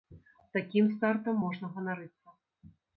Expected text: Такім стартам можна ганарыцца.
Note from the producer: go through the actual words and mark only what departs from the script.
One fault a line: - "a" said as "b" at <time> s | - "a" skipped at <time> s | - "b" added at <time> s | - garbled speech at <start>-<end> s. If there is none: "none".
none